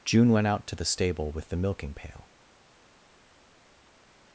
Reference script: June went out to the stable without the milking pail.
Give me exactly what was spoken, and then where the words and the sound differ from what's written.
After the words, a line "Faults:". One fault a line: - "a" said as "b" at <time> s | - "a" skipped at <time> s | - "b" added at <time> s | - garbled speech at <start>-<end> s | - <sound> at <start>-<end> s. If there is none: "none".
June went out to the stable with the milking pail.
Faults:
- "without" said as "with" at 1.3 s